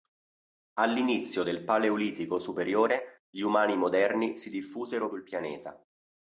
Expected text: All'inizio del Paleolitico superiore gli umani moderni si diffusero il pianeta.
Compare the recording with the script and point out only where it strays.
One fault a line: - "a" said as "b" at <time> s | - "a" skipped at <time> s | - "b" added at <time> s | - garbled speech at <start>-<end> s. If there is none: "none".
none